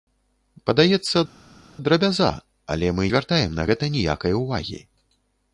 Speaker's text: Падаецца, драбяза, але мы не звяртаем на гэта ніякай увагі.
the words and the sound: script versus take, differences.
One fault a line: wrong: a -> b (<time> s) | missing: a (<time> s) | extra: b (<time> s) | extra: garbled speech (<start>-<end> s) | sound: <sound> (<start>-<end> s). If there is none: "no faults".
missing: не (3.1 s)